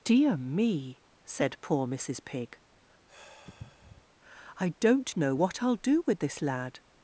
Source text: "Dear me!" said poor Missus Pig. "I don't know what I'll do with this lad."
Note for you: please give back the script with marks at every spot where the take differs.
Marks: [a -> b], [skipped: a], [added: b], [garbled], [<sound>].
"Dear me!" said poor Missus Pig. [sigh] "I don't know what I'll do with this lad."